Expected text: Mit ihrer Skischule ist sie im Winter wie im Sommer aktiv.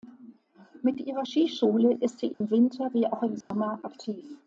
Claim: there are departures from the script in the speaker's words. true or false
true